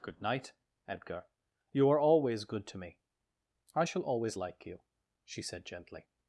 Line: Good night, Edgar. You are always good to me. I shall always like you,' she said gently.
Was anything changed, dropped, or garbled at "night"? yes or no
no